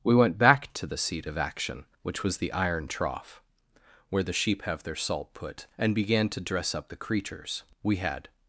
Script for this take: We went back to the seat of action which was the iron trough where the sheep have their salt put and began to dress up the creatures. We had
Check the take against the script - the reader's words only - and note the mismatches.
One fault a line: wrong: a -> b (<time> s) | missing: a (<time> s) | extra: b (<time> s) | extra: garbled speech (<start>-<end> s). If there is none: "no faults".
no faults